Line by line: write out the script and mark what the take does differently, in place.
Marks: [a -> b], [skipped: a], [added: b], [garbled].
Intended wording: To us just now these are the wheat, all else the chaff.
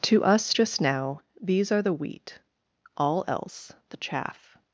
To us just now these are the wheat, all else the chaff.